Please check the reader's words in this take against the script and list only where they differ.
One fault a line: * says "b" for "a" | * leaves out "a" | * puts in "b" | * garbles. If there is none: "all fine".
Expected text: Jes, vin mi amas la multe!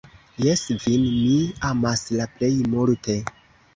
* puts in "plej"